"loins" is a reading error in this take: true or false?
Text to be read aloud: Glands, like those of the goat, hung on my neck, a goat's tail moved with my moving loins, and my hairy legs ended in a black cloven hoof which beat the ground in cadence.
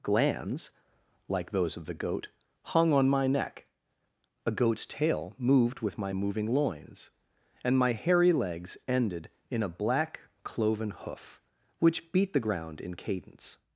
false